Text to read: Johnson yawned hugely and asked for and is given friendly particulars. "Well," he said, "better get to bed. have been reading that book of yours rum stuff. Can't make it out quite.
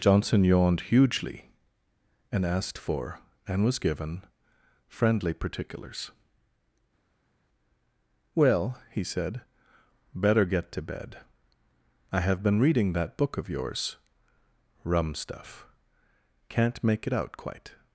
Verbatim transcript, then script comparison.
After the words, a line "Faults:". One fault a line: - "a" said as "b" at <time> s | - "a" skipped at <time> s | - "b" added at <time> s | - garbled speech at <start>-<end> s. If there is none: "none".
Johnson yawned hugely and asked for and was given friendly particulars. "Well," he said, "better get to bed. I have been reading that book of yours rum stuff. Can't make it out quite.
Faults:
- "is" said as "was" at 3.6 s
- "I" added at 12.1 s